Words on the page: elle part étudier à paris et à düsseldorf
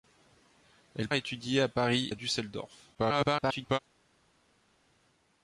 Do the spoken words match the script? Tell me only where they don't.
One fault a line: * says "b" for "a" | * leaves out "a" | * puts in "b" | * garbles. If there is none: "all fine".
* leaves out "part"
* leaves out "et"
* garbles